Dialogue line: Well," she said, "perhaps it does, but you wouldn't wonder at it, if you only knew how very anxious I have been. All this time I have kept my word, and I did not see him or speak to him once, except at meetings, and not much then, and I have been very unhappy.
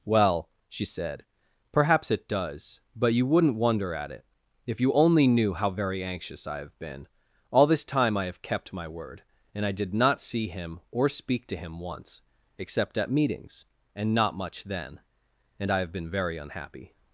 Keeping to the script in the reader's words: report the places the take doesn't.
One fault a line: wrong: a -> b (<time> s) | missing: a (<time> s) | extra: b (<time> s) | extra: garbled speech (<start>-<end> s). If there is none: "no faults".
no faults